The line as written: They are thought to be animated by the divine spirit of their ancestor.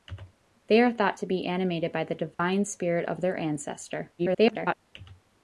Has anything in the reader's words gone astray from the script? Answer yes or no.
yes